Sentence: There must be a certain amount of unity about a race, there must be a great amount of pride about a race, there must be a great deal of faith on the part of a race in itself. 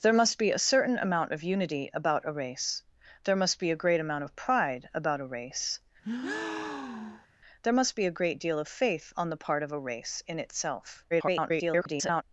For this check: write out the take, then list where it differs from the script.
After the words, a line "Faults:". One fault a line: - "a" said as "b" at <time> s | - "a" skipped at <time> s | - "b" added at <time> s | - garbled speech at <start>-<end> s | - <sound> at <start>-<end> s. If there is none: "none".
There must be a certain amount of unity about a race, there must be a great amount of pride about a race, there must be a great deal of faith on the part of a race in itself. [garbled]
Faults:
- breath at 6.0-7.3 s
- garbled speech at 11.1-12.2 s